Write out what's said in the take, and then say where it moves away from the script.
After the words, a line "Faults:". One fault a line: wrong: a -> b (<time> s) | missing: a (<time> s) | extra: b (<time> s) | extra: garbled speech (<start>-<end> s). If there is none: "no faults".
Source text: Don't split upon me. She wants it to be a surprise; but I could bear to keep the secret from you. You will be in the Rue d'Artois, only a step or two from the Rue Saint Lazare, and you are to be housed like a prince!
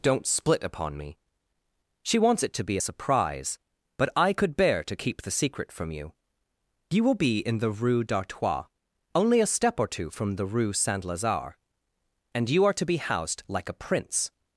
Don't split upon me. She wants it to be a surprise; but I could bear to keep the secret from you. You will be in the Rue d'Artois, only a step or two from the Rue Saint Lazare, and you are to be housed like a prince!
Faults:
no faults